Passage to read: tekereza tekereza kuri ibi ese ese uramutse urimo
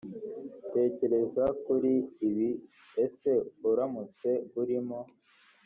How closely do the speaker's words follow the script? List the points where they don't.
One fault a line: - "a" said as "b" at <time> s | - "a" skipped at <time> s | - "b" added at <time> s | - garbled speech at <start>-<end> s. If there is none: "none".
- "tekereza" skipped at 1.4 s
- "ese" skipped at 3.3 s